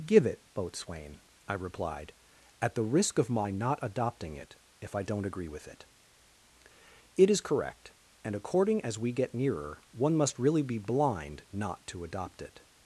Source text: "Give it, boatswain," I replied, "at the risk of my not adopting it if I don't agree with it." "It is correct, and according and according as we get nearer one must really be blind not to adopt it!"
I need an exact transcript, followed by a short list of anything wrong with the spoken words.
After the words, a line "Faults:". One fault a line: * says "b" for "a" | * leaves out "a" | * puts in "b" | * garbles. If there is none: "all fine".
"Give it, boatswain," I replied, "at the risk of my not adopting it if I don't agree with it." "It is correct, and according as we get nearer one must really be blind not to adopt it!"
Faults:
* leaves out "and according"